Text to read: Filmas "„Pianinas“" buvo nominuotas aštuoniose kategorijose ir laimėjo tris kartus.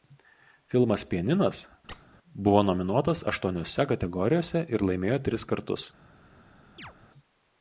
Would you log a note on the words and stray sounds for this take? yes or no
yes